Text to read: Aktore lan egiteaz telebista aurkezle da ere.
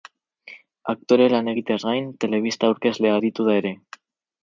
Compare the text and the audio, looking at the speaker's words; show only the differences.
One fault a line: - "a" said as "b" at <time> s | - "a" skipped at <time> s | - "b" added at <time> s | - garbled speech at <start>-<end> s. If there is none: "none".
- "gain" added at 1.9 s
- "aritu" added at 3.2 s